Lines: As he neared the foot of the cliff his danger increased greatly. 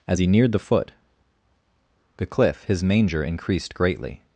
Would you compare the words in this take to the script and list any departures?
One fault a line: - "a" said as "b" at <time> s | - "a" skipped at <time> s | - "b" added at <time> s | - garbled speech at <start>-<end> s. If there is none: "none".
- "of" skipped at 0.9 s
- "danger" said as "manger" at 2.8 s